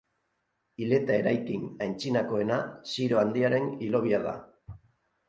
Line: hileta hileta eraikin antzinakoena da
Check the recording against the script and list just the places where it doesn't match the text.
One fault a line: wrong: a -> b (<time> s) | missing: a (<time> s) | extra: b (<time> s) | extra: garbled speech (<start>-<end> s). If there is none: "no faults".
missing: hileta (1.2 s)
extra: ziro handiaren hilobia (2.9 s)